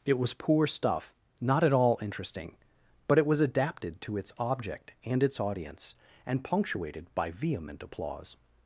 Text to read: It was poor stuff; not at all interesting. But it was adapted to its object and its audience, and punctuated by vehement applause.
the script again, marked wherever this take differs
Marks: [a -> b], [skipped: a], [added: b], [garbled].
It was poor stuff; not at all interesting. But it was adapted to its object and its audience, and punctuated by vehement applause.